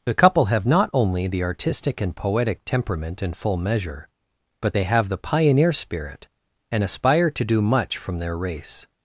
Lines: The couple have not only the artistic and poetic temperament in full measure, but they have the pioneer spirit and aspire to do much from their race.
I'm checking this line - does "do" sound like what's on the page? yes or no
yes